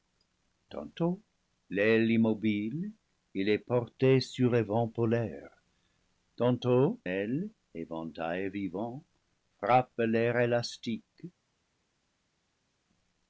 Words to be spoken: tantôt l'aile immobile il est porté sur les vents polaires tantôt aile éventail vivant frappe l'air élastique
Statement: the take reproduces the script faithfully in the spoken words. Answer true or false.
true